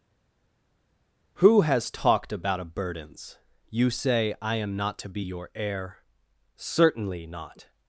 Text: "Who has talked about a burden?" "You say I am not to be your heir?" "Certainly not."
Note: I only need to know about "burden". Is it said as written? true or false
false